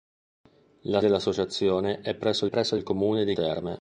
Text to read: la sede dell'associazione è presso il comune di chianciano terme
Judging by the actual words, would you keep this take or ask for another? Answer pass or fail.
fail